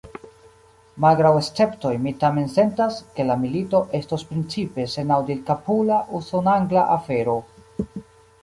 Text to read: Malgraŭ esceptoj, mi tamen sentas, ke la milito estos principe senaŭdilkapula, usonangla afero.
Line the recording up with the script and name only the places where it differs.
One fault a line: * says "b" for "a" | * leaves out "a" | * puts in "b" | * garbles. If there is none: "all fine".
all fine